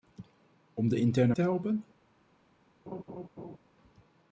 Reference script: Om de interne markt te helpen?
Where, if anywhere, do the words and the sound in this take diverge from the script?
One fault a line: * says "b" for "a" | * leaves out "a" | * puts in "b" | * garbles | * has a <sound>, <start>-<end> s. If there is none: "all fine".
* leaves out "markt"
* has a laugh, 2.9-3.6 s